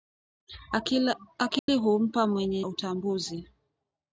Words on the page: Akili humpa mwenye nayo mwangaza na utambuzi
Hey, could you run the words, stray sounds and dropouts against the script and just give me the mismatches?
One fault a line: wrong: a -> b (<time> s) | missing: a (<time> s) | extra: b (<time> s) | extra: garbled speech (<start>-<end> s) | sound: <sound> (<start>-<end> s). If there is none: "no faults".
sound: dropout (1.6-1.7 s)
missing: nayo mwangaza na (2.6 s)